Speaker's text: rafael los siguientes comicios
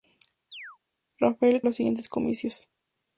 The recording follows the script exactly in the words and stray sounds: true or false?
false